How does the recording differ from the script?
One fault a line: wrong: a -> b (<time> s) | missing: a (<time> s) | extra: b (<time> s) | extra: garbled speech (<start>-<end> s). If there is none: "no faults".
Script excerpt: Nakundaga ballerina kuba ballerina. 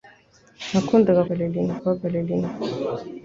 no faults